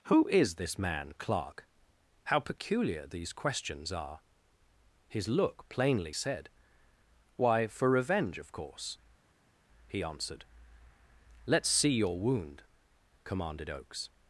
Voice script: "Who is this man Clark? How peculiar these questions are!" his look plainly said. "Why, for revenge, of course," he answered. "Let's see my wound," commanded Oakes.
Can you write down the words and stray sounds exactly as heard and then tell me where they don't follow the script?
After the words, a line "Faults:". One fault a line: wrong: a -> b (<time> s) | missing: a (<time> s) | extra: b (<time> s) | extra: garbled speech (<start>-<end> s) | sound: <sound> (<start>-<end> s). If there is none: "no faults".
"Who is this man Clark? How peculiar these questions are!" his look plainly said. "Why, for revenge, of course," he answered. "Let's see your wound," commanded Oakes.
Faults:
wrong: my -> your (11.9 s)